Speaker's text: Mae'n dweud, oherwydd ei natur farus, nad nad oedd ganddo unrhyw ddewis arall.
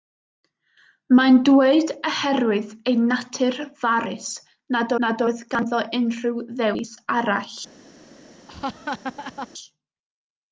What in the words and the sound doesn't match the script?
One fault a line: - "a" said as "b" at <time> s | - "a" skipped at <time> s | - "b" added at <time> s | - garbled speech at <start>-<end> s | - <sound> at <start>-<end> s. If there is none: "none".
- laugh at 8.5-9.5 s